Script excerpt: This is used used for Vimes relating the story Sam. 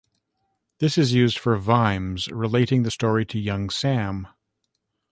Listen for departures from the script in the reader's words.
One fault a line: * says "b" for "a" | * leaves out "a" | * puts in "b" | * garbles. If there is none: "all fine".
* leaves out "used"
* puts in "to Young"